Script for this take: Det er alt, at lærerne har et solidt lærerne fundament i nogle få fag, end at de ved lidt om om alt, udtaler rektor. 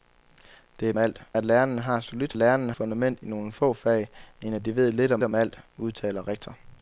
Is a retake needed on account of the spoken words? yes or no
no